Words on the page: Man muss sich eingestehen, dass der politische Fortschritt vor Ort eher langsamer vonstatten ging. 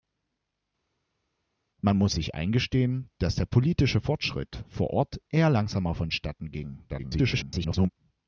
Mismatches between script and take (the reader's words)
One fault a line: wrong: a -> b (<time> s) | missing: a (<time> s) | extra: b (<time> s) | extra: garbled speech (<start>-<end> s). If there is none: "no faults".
extra: garbled speech (6.9-7.9 s)